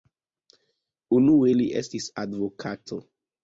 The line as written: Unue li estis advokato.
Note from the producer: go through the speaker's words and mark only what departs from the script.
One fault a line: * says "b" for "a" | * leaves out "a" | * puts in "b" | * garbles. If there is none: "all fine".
all fine